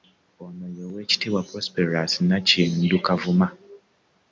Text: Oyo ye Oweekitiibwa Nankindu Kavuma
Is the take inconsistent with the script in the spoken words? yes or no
yes